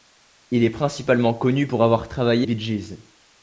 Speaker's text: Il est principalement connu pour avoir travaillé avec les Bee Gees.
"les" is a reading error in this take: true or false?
true